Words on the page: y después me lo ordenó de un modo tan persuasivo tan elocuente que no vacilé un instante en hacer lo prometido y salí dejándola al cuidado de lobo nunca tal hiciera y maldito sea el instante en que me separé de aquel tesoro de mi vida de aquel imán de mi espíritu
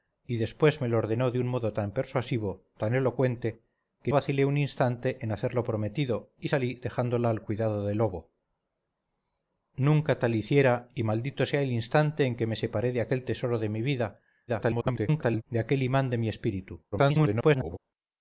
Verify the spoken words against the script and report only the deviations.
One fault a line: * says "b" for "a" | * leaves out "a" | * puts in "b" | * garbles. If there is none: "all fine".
* leaves out "no"
* garbles
* garbles